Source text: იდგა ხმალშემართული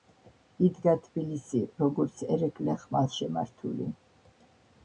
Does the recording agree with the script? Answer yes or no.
no